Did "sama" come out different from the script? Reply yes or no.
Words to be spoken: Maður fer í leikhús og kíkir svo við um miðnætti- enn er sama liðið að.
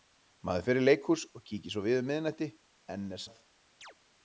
yes